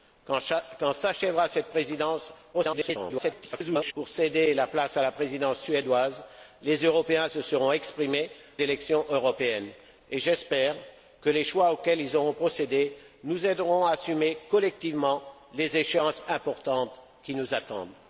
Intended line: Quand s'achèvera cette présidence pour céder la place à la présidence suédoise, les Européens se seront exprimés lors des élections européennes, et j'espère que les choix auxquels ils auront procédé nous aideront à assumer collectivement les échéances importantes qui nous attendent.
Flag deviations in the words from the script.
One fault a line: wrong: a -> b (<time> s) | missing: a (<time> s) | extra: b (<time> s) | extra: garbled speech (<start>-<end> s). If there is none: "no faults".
extra: garbled speech (2.5-3.9 s)
missing: lors des (8.3 s)